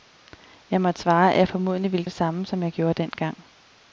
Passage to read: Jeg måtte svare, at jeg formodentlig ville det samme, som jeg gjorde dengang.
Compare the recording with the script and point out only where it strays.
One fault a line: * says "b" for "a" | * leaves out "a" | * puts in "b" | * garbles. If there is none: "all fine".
all fine